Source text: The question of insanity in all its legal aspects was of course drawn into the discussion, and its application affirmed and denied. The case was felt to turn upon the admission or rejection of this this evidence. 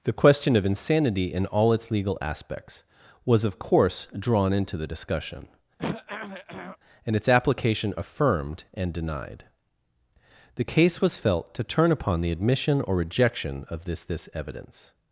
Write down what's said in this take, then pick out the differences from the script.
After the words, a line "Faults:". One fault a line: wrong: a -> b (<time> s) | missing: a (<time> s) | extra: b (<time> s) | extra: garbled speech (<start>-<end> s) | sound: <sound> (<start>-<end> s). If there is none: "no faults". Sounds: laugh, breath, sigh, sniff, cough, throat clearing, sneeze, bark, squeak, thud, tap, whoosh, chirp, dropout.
The question of insanity in all its legal aspects was of course drawn into the discussion, and its application affirmed and denied. The case was felt to turn upon the admission or rejection of this this evidence.
Faults:
sound: throat clearing (5.8-6.8 s)